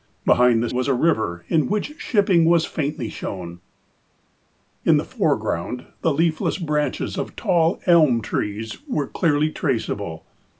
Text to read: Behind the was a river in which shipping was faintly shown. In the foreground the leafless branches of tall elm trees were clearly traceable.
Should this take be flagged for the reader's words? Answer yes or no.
no